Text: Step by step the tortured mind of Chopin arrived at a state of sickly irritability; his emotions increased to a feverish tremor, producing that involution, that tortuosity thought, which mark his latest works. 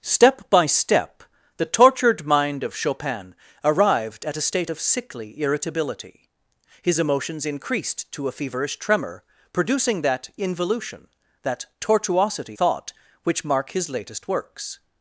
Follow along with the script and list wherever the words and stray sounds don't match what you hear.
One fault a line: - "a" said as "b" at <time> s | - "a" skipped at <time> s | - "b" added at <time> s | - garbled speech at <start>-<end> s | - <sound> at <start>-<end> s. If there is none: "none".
none